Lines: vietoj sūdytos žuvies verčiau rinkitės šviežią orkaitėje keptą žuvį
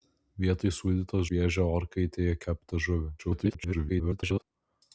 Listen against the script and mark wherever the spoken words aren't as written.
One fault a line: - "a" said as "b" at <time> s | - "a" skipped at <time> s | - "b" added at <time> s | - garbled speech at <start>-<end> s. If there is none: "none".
- "žuvies verčiau rinkitės" skipped at 1.2 s
- garbled speech at 3.2-4.4 s